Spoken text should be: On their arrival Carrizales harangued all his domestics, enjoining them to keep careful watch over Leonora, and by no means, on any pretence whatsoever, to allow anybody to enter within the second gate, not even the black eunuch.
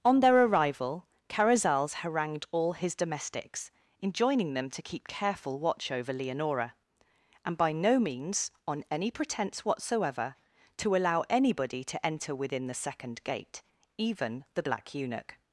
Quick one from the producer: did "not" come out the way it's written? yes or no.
no